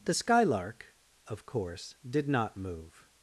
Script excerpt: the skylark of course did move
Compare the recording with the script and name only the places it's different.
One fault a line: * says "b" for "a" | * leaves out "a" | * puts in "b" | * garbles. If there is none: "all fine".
* puts in "not"